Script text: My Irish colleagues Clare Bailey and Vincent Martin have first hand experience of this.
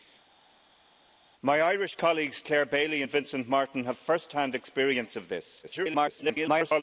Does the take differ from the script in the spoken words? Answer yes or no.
yes